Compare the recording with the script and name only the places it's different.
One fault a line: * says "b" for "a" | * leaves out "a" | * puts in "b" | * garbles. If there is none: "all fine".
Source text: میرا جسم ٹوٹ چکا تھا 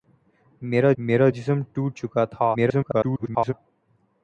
* puts in "میرا"
* garbles